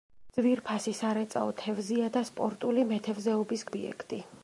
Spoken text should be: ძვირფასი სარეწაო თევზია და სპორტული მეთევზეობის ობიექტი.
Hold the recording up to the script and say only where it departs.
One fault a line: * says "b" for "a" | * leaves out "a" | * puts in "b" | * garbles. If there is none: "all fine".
all fine